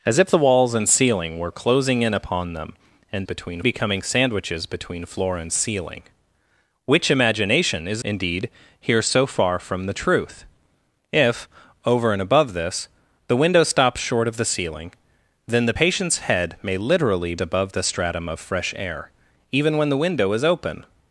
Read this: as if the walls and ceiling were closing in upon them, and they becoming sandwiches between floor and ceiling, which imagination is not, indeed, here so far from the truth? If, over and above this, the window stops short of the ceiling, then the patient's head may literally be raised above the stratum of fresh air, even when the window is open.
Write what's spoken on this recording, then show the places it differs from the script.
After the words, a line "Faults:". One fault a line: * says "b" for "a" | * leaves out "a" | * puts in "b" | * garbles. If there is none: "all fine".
as if the walls and ceiling were closing in upon them, and between becoming sandwiches between floor and ceiling, which imagination is indeed, here so far from the truth? If, over and above this, the window stops short of the ceiling, then the patient's head may literally above the stratum of fresh air, even when the window is open.
Faults:
* says "between" for "they"
* leaves out "not"
* leaves out "be raised"